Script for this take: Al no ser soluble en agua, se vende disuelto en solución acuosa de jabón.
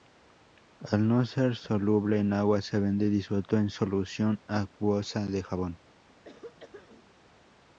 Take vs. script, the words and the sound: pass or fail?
fail